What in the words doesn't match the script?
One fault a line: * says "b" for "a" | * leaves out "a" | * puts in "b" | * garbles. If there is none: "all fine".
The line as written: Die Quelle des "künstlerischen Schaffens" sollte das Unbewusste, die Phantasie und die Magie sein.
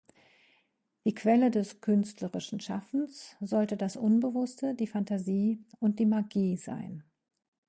all fine